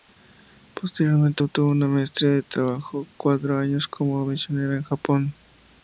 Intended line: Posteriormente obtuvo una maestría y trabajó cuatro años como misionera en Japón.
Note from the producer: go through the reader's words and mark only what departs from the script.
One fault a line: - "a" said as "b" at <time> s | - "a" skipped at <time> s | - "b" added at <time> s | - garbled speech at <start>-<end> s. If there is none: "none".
none